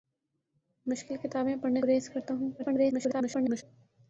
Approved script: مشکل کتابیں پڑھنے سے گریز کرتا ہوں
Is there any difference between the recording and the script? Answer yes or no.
yes